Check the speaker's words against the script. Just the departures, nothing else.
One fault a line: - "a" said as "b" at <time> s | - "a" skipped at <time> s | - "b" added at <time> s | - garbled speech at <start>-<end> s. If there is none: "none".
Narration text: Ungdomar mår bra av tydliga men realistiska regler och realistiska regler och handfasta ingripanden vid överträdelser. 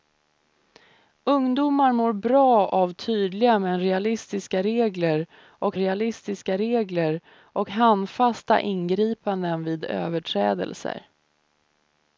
none